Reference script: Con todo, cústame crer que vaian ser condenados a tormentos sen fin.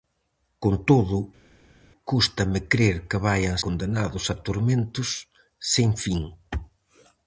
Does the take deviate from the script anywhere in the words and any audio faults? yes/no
yes